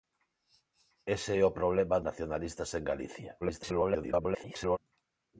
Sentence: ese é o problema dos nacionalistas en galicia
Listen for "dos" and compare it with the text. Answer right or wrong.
wrong